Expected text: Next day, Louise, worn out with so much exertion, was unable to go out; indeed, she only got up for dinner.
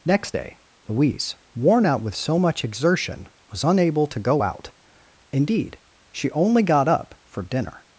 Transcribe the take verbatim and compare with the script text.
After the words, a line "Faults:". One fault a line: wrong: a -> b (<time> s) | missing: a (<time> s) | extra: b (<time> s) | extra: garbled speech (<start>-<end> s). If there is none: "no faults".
Next day, Louise, worn out with so much exertion, was unable to go out; indeed, she only got up for dinner.
Faults:
no faults